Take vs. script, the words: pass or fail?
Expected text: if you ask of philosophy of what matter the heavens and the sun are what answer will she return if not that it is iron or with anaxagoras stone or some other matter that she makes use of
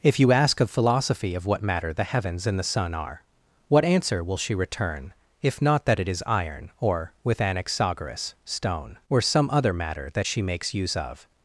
pass